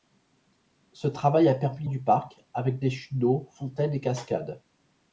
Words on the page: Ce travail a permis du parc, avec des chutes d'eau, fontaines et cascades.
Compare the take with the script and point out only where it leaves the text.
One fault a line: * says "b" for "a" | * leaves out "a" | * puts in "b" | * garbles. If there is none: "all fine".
all fine